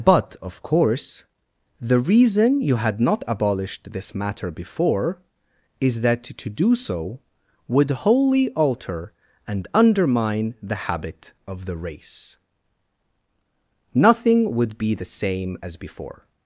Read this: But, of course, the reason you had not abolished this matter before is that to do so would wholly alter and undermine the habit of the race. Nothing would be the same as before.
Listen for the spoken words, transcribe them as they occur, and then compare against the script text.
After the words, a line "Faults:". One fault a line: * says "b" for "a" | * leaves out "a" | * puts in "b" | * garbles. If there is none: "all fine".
But, of course, the reason you had not abolished this matter before is that to do so would wholly alter and undermine the habit of the race. Nothing would be the same as before.
Faults:
all fine